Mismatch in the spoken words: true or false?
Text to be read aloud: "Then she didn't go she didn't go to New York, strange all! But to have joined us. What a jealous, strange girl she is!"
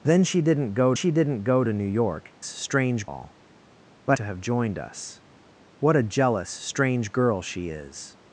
false